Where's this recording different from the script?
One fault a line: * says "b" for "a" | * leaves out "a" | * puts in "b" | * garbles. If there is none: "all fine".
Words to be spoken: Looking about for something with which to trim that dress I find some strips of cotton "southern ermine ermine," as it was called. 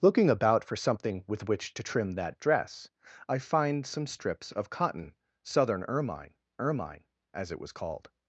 all fine